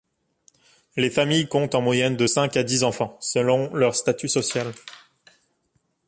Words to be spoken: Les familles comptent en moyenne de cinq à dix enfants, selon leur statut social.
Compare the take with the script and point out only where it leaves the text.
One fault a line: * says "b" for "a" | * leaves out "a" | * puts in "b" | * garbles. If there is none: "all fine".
all fine